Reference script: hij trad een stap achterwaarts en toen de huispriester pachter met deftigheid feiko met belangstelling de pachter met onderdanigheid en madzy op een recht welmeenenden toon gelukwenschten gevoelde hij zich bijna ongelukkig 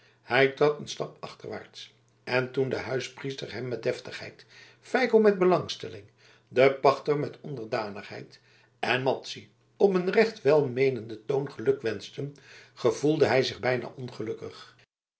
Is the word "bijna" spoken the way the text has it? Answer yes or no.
yes